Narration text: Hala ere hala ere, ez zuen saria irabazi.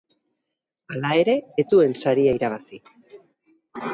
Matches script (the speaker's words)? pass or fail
fail